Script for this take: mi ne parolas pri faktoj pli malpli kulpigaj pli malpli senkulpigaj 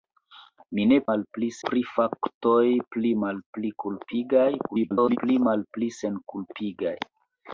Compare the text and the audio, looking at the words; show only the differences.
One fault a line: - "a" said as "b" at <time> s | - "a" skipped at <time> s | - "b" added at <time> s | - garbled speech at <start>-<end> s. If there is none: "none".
- "parolas" said as "malpli" at 1.1 s
- garbled speech at 4.7-5.2 s